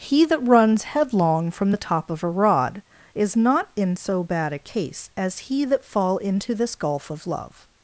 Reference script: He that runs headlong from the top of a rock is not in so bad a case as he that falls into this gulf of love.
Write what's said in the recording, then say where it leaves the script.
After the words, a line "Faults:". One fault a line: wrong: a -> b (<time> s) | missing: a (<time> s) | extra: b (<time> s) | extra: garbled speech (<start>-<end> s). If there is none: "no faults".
He that runs headlong from the top of a rod is not in so bad a case as he that fall into this gulf of love.
Faults:
wrong: rock -> rod (2.3 s)
wrong: falls -> fall (5.8 s)